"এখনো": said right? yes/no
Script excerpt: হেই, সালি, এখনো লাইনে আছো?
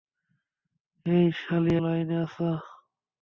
no